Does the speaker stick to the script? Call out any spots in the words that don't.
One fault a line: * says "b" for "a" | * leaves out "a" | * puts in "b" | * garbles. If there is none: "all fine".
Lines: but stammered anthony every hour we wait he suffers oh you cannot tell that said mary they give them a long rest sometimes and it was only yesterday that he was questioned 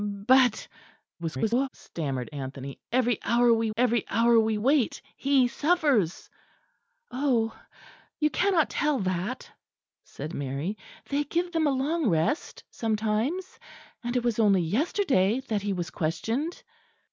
* garbles
* puts in "every hour we"